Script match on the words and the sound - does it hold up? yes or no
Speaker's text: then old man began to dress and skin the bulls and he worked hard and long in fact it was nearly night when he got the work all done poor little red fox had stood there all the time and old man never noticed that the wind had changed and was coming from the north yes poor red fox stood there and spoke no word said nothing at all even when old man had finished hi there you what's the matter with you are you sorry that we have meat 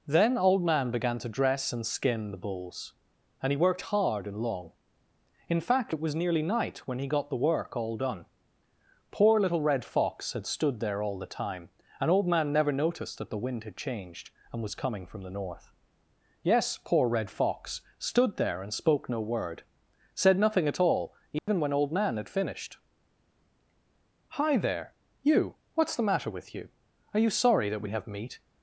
no